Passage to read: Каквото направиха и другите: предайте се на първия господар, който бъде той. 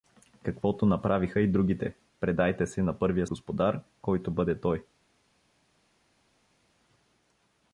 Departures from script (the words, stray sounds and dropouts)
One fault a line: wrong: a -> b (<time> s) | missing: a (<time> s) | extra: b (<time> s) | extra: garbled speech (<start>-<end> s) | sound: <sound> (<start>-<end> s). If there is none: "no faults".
no faults